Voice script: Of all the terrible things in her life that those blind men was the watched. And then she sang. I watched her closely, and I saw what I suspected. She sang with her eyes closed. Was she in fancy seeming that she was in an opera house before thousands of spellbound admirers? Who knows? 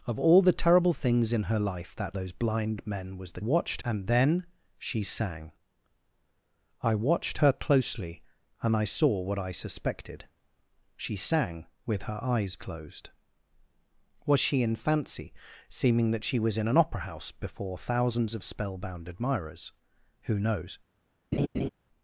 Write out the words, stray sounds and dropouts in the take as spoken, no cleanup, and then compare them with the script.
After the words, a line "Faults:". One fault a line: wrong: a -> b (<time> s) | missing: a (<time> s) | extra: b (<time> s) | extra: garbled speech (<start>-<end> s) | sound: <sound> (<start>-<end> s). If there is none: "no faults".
Of all the terrible things in her life that those blind men was the watched. And then she sang. I watched her closely, and I saw what I suspected. She sang with her eyes closed. Was she in fancy seeming that she was in an opera house before thousands of spellbound admirers? Who knows?
Faults:
sound: laugh (21.3-21.7 s)